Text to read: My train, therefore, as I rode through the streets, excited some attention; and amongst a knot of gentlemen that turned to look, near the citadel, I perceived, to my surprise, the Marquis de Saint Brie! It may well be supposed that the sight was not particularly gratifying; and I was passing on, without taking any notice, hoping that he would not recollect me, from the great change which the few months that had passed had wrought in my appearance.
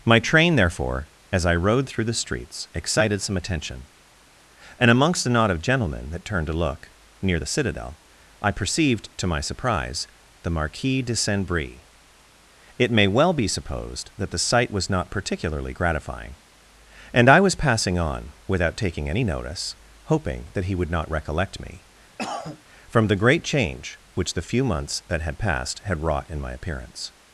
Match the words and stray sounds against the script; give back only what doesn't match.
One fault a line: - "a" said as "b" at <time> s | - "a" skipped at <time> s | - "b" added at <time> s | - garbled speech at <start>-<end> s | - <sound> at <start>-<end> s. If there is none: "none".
- cough at 22.2-22.6 s